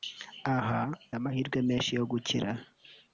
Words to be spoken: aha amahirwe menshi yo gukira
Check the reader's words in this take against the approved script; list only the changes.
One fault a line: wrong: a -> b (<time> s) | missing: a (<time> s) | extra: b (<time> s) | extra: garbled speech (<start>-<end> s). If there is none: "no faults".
no faults